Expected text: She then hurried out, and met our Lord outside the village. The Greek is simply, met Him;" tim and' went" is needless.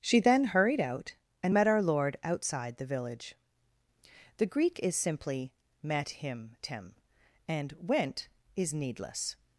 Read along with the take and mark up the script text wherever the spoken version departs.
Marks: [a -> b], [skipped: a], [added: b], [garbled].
She then hurried out, and met our Lord outside the village. The Greek is simply, met Him;" tim and' went" is needless.